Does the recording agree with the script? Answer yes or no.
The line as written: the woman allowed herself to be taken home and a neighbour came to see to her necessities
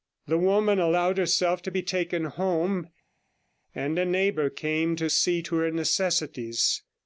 yes